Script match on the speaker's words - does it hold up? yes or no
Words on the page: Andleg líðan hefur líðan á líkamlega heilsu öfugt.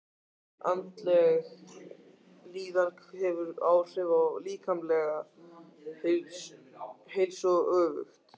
no